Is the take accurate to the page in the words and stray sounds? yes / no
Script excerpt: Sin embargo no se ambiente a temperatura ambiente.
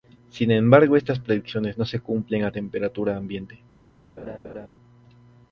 no